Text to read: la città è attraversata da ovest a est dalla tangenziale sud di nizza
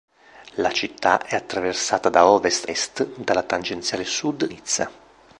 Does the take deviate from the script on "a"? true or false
true